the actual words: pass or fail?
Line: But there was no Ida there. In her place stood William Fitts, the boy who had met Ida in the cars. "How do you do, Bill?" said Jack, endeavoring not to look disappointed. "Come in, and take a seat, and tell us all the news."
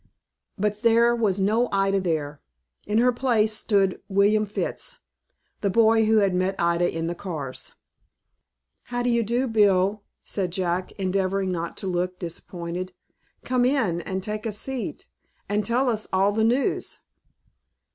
pass